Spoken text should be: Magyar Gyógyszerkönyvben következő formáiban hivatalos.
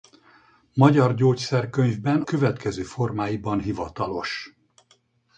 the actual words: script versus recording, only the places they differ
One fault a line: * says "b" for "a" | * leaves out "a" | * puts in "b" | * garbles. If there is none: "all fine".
all fine